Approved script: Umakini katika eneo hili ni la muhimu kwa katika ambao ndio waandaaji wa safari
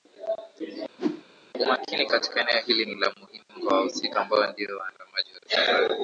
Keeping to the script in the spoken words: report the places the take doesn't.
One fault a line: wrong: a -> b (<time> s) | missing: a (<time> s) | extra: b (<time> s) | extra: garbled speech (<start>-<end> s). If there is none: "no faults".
wrong: katika -> wahusika (3.8 s)